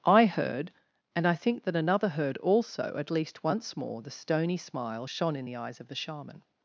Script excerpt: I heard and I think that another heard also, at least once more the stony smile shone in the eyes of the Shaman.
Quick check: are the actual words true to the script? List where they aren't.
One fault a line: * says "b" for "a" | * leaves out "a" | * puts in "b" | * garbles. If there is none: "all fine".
all fine